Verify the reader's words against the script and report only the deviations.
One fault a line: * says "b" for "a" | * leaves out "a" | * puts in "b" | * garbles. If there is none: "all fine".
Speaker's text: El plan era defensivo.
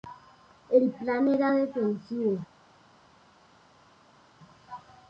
all fine